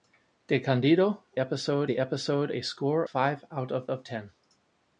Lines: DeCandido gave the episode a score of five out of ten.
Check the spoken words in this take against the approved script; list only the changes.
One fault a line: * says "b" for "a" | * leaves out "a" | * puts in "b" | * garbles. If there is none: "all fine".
* says "episode" for "gave"
* leaves out "of"
* puts in "of"